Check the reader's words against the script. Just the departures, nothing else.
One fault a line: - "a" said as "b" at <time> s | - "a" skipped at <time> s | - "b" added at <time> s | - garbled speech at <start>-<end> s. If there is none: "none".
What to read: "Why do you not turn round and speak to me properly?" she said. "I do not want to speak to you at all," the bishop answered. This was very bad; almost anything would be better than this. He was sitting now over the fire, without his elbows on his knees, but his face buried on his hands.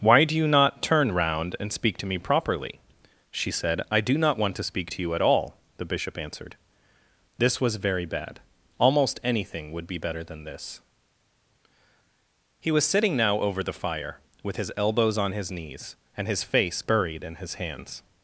- "without" said as "with" at 14.4 s
- "but" said as "and" at 16.1 s
- "on" said as "in" at 17.2 s